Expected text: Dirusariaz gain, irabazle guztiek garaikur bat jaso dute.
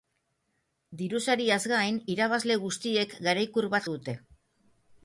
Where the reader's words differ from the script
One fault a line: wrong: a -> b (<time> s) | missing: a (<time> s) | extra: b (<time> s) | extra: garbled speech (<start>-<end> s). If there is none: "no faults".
missing: jaso (3.9 s)